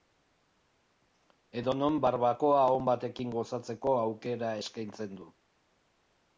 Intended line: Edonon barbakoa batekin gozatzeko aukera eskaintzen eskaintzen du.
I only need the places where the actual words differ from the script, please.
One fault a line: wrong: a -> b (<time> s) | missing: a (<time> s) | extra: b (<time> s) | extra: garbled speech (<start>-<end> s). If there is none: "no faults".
extra: on (2.8 s)
missing: eskaintzen (5.2 s)